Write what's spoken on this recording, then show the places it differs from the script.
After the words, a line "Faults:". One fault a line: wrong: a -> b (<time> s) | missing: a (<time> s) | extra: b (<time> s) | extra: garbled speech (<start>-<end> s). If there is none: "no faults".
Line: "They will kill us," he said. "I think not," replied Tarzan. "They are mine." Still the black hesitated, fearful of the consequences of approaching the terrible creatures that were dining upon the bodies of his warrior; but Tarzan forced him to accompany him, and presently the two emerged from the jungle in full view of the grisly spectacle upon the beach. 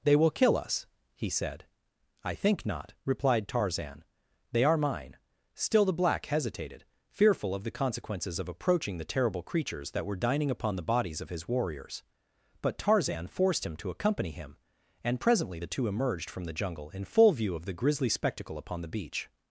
"They will kill us," he said. "I think not," replied Tarzan. "They are mine." Still the black hesitated, fearful of the consequences of approaching the terrible creatures that were dining upon the bodies of his warriors; but Tarzan forced him to accompany him, and presently the two emerged from the jungle in full view of the grisly spectacle upon the beach.
Faults:
wrong: warrior -> warriors (11.5 s)